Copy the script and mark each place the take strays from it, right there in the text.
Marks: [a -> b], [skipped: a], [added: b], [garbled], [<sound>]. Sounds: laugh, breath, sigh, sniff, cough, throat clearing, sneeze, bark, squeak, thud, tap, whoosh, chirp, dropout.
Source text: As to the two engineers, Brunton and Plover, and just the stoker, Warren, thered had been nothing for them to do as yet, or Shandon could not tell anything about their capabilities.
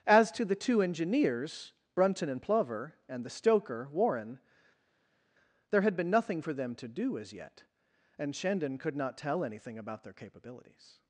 As to the two engineers, Brunton and Plover, and [skipped: just] the stoker, Warren, [thered -> there] had been nothing for them to do as yet, [or -> and] Shandon could not tell anything about their capabilities.